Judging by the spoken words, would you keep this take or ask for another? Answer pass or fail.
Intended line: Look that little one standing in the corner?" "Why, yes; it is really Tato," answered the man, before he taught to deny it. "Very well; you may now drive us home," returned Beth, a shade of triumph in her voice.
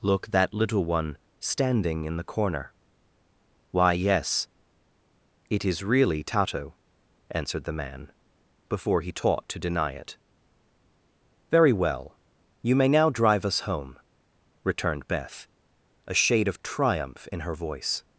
pass